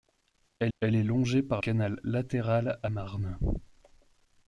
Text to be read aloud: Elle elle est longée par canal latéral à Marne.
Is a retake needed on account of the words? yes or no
no